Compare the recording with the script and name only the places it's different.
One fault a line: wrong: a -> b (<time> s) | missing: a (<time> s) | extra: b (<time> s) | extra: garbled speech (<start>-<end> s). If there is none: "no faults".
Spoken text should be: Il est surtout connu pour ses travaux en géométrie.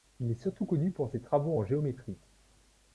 no faults